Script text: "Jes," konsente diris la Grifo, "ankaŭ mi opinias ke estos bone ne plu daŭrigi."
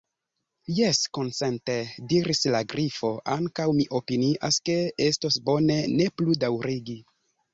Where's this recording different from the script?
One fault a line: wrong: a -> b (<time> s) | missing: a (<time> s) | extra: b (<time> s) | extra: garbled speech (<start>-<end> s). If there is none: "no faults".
no faults